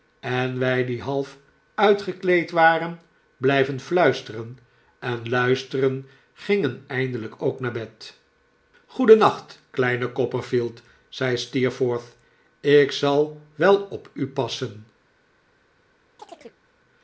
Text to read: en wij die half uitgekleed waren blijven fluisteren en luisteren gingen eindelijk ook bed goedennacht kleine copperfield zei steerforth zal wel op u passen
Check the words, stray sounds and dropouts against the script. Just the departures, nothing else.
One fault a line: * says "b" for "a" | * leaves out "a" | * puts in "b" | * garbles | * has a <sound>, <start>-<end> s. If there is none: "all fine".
* puts in "naar"
* puts in "ik"
* has a chirp, 16.2-16.6 s